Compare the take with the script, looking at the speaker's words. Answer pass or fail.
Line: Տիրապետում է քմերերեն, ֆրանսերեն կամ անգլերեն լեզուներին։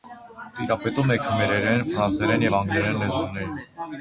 fail